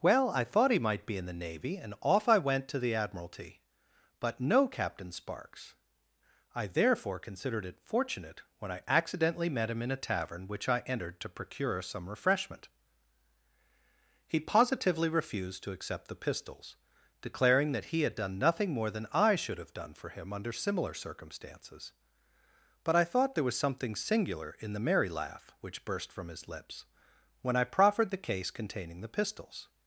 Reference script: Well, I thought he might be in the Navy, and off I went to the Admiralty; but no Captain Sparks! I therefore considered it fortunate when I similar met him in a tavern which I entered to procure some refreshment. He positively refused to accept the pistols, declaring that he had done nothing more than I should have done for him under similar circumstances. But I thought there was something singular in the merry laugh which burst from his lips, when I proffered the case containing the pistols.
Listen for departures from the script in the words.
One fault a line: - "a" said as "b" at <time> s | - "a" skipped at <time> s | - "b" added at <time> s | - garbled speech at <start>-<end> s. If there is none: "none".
- "similar" said as "accidentally" at 8.9 s